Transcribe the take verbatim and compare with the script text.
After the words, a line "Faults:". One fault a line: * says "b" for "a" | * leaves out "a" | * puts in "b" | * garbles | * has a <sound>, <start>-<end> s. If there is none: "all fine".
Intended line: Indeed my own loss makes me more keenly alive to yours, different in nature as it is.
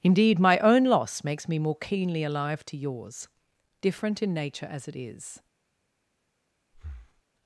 Indeed my own loss makes me more keenly alive to yours, different in nature as it is.
Faults:
* has a breath, 6.7-7.2 s